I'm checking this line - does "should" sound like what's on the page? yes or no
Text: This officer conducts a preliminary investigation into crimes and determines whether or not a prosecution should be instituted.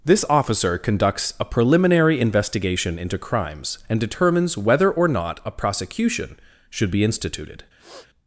yes